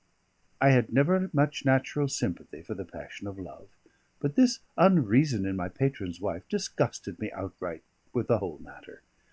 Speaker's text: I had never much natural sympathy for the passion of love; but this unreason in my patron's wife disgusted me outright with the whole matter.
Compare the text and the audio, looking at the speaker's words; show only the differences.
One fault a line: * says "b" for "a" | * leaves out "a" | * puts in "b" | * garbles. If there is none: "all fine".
all fine